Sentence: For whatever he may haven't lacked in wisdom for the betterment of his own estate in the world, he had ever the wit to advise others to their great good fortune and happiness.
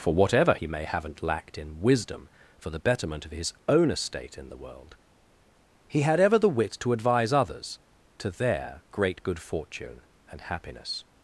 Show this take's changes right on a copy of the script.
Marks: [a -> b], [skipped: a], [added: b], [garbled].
For whatever he may haven't lacked in wisdom for the betterment of his own estate in the world, he had ever the wit to advise others to their great good fortune and happiness.